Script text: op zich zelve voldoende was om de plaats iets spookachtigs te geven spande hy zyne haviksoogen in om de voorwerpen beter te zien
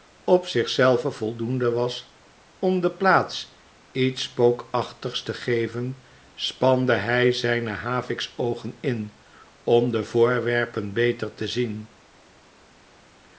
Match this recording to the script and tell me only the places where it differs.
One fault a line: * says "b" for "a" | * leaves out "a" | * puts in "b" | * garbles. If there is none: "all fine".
all fine